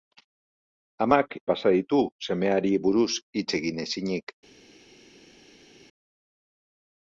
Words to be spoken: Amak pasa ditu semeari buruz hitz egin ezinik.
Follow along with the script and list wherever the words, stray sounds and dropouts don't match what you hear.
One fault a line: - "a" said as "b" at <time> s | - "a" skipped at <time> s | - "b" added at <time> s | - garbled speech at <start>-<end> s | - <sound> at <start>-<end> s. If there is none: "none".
none